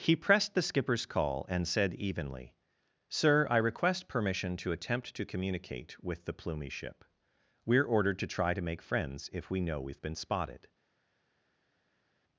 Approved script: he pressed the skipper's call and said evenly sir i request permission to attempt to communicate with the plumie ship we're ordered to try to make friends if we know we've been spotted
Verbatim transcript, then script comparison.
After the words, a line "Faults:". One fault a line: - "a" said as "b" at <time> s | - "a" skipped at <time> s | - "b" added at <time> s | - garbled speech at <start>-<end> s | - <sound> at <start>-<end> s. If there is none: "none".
he pressed the skipper's call and said evenly sir i request permission to attempt to communicate with the plumie ship we're ordered to try to make friends if we know we've been spotted
Faults:
none